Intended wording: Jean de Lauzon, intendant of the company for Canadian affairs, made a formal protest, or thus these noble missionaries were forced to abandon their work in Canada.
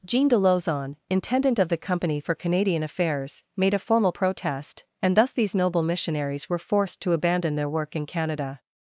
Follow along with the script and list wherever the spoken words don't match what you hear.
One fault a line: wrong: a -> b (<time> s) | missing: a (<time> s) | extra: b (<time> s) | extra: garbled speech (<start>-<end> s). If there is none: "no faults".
wrong: or -> and (5.0 s)